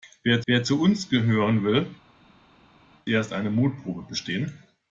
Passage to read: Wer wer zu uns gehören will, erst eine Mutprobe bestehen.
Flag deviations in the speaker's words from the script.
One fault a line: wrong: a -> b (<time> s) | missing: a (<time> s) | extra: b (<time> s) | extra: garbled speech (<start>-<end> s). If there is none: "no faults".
no faults